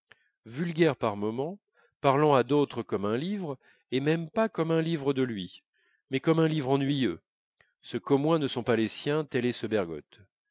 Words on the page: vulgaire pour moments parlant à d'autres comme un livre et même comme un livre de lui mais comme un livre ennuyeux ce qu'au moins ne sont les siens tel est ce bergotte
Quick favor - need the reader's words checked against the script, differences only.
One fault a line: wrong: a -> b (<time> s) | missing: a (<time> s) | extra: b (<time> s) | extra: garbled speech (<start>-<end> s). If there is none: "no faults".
wrong: pour -> par (0.9 s)
extra: pas (4.3 s)
extra: pas (8.6 s)